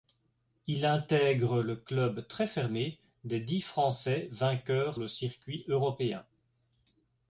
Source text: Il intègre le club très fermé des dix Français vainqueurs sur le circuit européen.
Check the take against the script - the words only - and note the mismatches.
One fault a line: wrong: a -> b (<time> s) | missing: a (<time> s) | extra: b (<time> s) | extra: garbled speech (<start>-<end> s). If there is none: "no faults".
missing: sur (5.0 s)